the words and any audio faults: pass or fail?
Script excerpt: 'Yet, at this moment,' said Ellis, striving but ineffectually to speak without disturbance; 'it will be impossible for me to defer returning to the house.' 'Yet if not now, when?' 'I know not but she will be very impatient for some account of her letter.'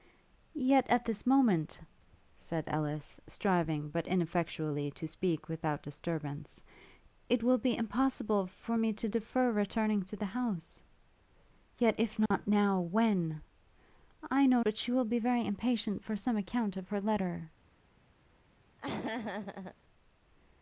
fail